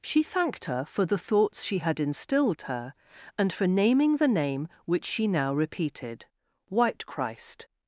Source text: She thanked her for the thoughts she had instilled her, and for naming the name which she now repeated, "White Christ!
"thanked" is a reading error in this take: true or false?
false